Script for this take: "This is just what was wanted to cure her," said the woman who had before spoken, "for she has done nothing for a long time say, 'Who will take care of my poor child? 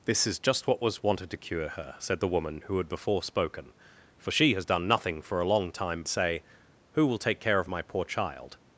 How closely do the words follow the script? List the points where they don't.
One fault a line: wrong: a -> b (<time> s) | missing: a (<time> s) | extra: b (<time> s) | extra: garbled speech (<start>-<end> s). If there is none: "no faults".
no faults